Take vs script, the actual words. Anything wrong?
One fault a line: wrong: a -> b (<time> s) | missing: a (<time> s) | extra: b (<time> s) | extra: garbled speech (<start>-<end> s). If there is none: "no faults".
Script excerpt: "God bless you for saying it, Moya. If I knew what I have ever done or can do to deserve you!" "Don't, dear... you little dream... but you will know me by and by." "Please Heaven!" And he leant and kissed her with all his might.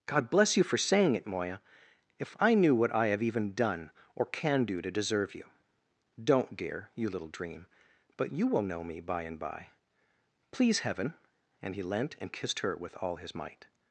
wrong: ever -> even (3.2 s)